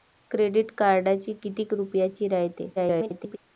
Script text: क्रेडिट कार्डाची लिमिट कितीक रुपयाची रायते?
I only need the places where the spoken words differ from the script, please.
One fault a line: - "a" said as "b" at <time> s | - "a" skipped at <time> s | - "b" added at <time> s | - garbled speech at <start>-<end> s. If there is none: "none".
- "लिमिट" skipped at 1.4 s
- garbled speech at 2.8-3.4 s